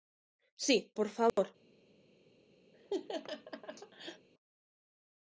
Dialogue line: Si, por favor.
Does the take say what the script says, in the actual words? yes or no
yes